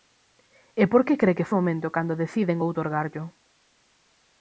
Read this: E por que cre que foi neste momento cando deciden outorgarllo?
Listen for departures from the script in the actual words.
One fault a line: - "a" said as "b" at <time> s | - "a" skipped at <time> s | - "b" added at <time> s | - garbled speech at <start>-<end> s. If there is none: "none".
- "foi neste" skipped at 1.5 s